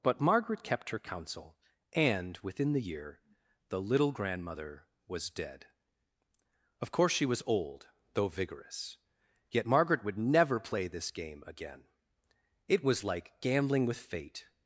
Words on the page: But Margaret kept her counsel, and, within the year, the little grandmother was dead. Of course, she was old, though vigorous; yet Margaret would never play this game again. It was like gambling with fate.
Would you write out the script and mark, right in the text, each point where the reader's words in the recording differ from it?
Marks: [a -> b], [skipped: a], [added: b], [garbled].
But Margaret kept her counsel, and, within the year, the little grandmother was dead. Of course, she was old, though vigorous; yet Margaret would never play this game again. It was like gambling with fate.